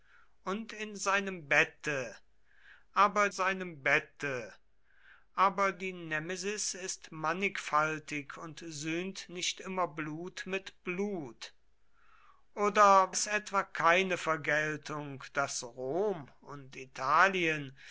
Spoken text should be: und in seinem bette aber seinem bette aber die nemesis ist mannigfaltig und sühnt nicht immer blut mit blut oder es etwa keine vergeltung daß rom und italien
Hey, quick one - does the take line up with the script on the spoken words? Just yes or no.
yes